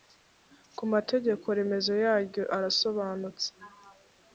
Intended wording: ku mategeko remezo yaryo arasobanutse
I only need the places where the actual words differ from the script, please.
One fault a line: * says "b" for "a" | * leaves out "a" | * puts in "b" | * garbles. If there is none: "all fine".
all fine